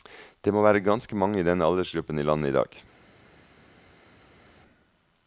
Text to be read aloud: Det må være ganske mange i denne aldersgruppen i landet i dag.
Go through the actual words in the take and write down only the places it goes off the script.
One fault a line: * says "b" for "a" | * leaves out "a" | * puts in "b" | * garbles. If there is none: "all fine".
all fine